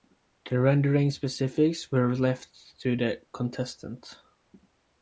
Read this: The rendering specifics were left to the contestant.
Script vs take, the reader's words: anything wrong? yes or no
no